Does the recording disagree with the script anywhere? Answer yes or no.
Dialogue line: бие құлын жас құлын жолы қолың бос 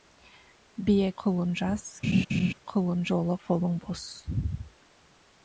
no